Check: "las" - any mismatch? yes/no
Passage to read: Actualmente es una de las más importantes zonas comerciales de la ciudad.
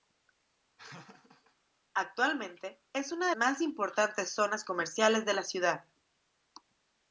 yes